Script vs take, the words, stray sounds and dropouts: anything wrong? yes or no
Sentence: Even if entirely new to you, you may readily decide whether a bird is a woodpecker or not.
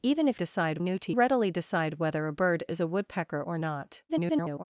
yes